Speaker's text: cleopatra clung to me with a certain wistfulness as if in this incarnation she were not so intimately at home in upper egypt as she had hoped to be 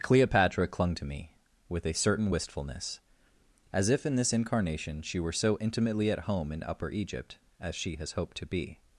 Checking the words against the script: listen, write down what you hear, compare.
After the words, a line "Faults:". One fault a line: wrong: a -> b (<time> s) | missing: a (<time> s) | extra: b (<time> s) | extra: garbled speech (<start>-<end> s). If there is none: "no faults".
cleopatra clung to me with a certain wistfulness as if in this incarnation she were so intimately at home in upper egypt as she has hoped to be
Faults:
missing: not (5.3 s)
wrong: had -> has (8.0 s)